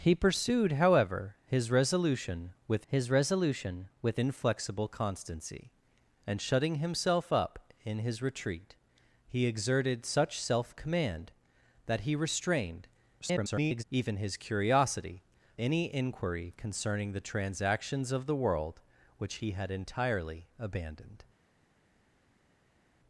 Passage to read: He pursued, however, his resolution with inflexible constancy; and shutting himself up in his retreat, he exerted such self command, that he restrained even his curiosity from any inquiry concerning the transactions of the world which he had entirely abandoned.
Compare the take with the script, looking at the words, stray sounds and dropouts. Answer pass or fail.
fail